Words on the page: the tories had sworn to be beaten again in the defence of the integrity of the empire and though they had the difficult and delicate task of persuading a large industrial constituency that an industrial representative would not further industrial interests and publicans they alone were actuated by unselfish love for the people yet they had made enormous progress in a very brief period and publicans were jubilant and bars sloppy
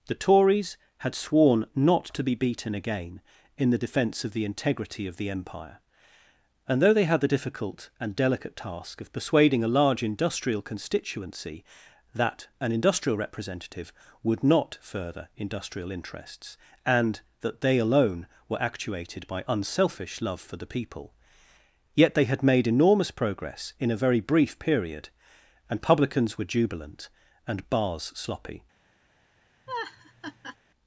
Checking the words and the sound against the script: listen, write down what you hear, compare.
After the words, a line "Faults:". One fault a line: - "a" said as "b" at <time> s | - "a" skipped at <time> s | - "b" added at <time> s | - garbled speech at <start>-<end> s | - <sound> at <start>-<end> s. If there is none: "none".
the tories had sworn not to be beaten again in the defence of the integrity of the empire and though they had the difficult and delicate task of persuading a large industrial constituency that an industrial representative would not further industrial interests and that they alone were actuated by unselfish love for the people yet they had made enormous progress in a very brief period and publicans were jubilant and bars sloppy
Faults:
- "not" added at 1.8 s
- "publicans" said as "that" at 17.4 s
- laugh at 29.7-30.6 s